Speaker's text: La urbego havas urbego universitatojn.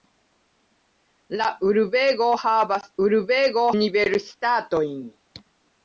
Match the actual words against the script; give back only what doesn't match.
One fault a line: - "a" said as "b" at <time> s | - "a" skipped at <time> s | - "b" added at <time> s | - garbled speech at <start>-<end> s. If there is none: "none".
none